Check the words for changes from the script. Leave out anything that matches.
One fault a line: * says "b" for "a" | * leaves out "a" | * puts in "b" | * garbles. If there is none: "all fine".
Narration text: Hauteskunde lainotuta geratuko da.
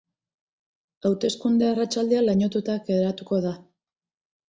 * puts in "arratsaldea"